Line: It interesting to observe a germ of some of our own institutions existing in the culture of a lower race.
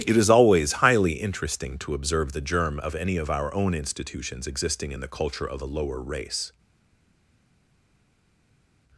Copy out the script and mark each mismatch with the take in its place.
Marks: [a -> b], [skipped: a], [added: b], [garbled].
It [added: is always highly] interesting to observe [a -> the] germ of [some -> any] of our own institutions existing in the culture of a lower race.